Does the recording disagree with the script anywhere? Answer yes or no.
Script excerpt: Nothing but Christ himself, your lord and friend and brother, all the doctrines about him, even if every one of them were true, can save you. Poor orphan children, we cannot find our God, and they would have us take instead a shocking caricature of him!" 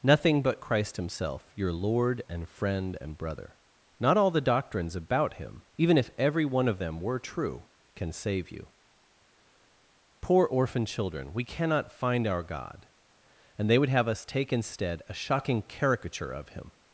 yes